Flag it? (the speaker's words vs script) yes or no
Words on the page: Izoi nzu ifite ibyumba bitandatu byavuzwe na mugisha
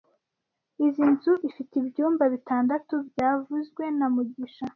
no